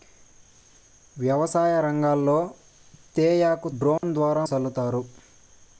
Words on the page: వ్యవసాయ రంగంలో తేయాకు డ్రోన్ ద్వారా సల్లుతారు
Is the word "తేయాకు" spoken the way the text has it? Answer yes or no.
yes